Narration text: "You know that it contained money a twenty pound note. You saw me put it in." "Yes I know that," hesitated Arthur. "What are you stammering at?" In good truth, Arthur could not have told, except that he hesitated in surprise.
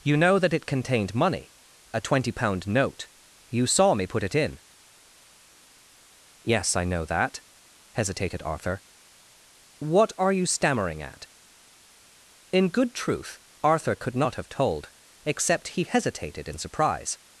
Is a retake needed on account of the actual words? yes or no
yes